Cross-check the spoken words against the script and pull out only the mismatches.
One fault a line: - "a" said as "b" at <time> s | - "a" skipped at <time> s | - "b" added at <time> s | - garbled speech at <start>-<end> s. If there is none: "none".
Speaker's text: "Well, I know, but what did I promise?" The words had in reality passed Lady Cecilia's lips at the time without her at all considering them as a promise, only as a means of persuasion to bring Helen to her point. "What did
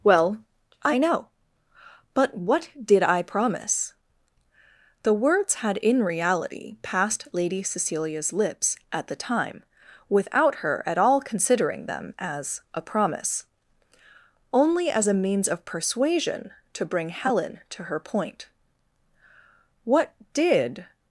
none